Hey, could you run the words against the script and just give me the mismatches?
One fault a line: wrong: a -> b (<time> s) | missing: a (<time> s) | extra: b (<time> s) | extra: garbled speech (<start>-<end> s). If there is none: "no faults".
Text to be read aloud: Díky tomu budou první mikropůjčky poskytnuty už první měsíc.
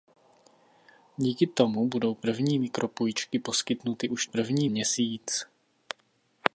no faults